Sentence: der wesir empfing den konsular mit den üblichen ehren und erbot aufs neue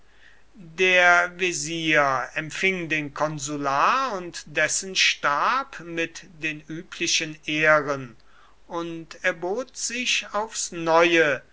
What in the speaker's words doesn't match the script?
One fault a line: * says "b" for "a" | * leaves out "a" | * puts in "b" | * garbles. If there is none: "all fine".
* puts in "und dessen stab"
* puts in "sich"